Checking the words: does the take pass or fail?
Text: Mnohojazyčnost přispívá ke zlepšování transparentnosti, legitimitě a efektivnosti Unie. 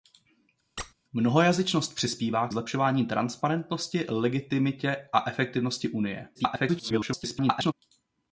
fail